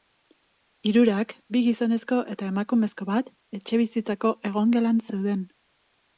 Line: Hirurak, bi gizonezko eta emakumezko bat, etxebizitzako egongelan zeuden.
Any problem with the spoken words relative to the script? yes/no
no